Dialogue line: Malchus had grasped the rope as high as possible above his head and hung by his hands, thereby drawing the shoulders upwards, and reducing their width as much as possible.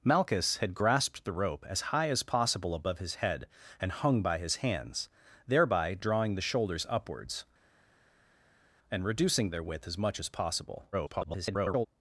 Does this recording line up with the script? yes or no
no